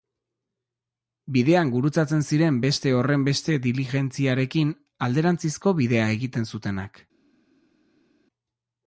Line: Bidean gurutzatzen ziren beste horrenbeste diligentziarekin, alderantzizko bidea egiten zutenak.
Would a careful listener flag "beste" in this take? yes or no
no